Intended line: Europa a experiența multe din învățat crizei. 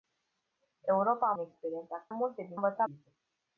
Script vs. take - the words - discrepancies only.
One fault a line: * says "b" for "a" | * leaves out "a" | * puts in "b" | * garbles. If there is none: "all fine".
all fine